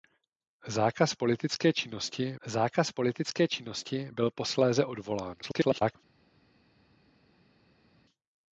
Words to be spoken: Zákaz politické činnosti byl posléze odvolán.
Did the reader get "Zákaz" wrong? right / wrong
right